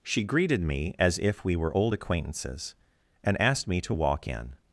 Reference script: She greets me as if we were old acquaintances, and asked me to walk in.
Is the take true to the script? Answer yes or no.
no